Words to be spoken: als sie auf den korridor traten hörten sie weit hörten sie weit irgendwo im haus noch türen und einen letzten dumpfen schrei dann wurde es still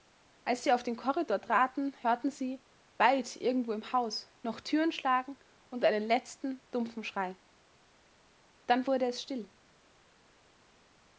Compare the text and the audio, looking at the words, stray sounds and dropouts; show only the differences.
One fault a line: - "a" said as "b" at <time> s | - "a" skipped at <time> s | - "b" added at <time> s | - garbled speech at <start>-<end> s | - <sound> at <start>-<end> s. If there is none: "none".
- "hörten sie weit" skipped at 3.3 s
- "schlagen" added at 4.9 s